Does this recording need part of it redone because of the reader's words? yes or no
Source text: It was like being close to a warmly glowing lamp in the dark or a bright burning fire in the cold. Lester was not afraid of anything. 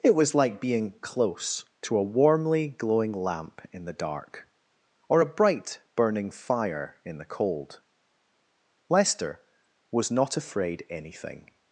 yes